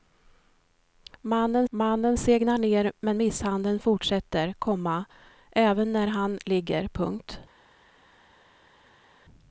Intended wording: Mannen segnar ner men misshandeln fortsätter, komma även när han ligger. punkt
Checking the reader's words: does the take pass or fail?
fail